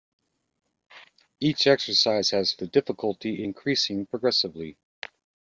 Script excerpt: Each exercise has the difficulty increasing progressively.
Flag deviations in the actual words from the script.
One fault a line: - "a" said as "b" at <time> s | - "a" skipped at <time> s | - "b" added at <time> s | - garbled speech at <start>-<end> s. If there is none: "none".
none